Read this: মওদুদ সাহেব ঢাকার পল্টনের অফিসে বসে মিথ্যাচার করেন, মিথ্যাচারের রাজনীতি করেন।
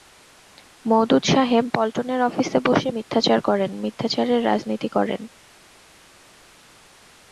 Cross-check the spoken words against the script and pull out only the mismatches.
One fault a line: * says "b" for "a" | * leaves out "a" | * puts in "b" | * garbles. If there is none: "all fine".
* leaves out "ঢাকার"